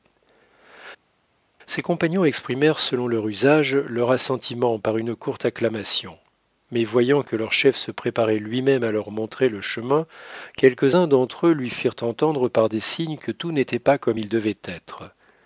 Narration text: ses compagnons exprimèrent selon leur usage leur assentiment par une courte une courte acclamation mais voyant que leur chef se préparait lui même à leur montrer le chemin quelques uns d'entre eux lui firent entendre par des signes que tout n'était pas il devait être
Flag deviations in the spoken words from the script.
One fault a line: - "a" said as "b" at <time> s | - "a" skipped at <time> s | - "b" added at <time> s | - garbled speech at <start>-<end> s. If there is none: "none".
- "une courte" skipped at 5.5 s
- "comme" added at 14.0 s